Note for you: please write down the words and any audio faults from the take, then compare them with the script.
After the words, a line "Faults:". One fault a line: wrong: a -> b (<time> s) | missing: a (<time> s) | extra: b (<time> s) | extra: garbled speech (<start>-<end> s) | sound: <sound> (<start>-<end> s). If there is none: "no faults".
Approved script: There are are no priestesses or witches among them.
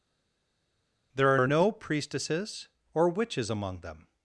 There are are no priestesses or witches among them.
Faults:
no faults